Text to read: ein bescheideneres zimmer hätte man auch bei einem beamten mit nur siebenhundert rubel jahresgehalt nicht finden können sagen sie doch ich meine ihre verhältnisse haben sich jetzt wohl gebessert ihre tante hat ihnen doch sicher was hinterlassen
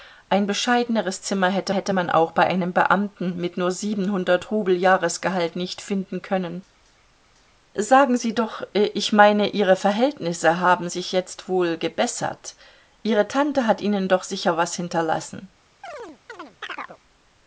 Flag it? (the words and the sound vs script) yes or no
yes